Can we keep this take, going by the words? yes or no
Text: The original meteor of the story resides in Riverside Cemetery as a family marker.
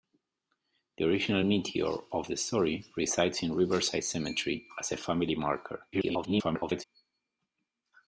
no